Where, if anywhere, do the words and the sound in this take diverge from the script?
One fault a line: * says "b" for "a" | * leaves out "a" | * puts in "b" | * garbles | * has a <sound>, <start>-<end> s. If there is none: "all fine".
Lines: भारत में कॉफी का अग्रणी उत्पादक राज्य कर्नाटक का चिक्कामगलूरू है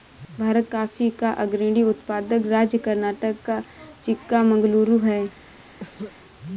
* leaves out "में"
* has a cough, 5.8-6.1 s